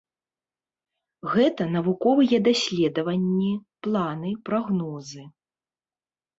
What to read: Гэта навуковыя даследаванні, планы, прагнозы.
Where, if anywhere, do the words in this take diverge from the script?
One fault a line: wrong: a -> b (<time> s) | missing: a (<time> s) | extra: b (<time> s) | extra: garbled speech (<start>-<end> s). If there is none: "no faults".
no faults